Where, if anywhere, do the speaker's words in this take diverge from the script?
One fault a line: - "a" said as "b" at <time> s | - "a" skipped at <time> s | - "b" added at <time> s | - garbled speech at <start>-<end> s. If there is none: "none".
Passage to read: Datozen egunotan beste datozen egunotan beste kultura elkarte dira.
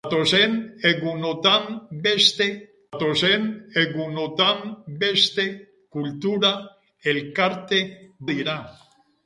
none